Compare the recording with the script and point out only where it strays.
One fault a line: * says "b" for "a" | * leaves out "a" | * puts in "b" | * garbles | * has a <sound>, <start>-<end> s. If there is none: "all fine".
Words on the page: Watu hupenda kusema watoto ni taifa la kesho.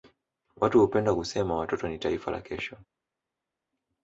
all fine